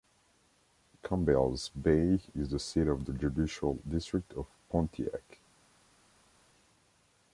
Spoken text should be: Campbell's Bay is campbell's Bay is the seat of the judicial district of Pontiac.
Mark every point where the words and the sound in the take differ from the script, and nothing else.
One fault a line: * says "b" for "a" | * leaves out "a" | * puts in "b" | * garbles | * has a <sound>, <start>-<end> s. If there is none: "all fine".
* leaves out "campbell's Bay is"